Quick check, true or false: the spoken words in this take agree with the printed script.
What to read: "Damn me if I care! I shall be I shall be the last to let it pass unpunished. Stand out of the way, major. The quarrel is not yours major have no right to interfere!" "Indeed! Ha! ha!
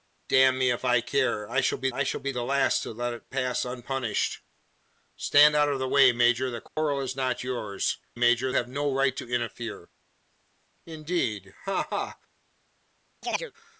true